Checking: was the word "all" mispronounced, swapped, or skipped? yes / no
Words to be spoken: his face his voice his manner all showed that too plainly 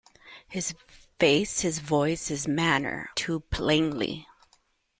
yes